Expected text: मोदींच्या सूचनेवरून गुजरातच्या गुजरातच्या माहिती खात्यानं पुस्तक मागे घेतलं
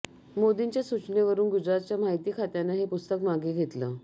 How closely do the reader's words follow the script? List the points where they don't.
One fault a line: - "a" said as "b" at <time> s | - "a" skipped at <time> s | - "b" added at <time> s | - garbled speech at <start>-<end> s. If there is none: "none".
- "गुजरातच्या" skipped at 2.0 s
- "हे" added at 2.7 s